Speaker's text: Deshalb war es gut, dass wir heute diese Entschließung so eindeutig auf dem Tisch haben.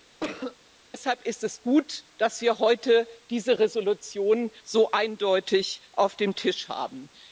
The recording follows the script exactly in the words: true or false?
false